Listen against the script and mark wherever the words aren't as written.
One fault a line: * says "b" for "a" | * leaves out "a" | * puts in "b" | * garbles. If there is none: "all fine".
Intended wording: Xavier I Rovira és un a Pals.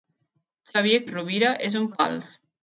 all fine